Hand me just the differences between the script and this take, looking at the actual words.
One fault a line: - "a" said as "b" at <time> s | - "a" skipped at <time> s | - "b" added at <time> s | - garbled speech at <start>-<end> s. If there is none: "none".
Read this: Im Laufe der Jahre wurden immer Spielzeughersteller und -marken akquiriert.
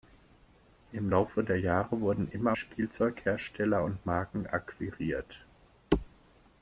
none